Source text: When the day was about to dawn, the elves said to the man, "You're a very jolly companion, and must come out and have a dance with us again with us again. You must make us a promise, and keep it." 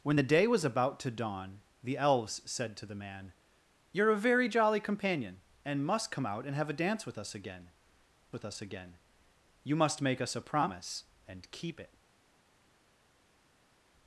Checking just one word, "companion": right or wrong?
right